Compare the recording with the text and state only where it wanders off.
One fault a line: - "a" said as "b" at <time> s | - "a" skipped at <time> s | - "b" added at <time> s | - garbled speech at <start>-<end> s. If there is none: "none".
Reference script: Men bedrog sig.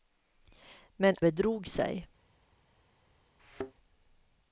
none